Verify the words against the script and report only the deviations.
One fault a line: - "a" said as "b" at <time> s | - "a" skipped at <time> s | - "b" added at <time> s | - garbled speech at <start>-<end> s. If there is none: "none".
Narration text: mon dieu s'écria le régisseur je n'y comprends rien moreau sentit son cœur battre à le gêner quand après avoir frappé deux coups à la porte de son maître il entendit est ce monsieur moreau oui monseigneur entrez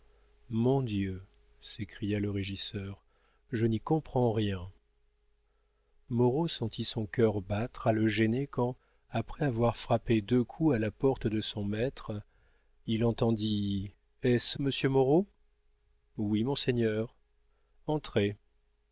none